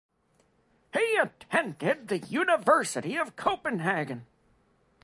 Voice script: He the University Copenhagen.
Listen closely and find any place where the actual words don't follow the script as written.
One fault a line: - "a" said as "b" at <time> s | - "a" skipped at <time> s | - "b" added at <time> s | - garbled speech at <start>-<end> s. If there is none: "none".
- "attended" added at 1.2 s
- "of" added at 3.2 s